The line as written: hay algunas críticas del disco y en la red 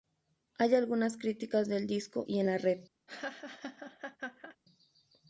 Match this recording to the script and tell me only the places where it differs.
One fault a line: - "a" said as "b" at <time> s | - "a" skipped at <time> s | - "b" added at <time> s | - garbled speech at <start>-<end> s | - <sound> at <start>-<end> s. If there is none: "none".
- laugh at 3.1-4.6 s